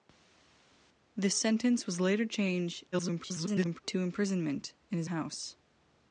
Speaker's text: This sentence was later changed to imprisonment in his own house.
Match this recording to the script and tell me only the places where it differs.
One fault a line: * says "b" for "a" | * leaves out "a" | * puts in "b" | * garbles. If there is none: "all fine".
* garbles
* leaves out "own"